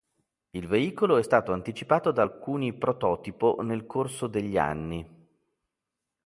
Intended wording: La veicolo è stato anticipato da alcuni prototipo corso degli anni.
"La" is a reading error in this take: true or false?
true